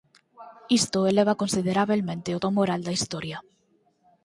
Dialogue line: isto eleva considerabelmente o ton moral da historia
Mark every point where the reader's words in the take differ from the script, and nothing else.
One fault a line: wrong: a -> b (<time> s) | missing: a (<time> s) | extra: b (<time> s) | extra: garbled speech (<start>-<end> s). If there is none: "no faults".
no faults